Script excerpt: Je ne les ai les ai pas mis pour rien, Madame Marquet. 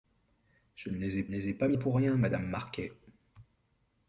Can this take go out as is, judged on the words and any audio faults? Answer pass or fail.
pass